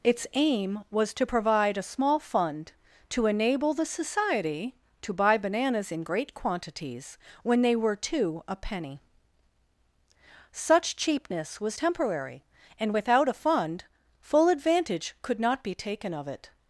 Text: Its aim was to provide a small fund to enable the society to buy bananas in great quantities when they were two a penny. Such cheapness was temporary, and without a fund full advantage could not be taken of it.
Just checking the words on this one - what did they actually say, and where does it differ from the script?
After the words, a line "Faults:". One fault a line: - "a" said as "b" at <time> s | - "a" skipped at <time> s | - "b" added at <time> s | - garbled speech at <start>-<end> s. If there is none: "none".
Its aim was to provide a small fund to enable the society to buy bananas in great quantities when they were two a penny. Such cheapness was temporary, and without a fund full advantage could not be taken of it.
Faults:
none